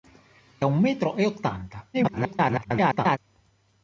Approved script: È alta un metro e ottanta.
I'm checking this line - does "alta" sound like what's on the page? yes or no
no